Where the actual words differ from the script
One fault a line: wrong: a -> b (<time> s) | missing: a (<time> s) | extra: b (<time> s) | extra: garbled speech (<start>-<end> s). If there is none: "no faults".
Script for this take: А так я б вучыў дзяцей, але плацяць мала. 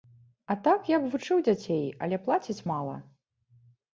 no faults